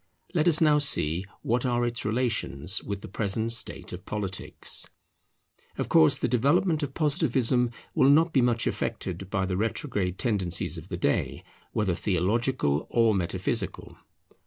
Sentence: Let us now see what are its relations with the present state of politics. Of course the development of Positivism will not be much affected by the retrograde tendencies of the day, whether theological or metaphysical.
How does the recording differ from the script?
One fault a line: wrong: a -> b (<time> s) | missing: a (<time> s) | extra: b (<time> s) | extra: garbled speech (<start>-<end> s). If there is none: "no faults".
no faults